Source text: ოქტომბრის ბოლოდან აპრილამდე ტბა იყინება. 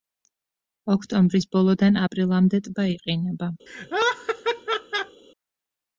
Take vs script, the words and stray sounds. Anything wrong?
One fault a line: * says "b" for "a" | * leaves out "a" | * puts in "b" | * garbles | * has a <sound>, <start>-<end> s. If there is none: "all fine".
* has a laugh, 3.7-5.2 s